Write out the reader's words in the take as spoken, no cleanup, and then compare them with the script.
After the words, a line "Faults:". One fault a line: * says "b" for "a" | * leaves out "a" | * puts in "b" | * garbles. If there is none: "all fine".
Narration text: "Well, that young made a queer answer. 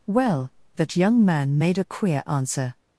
"Well, that young man made a queer answer.
Faults:
* puts in "man"